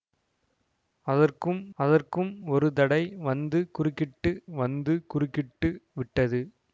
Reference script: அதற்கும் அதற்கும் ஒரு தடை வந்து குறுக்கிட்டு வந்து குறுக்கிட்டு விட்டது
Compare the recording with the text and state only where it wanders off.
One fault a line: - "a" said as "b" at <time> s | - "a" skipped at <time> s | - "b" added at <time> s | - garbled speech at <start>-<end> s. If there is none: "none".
none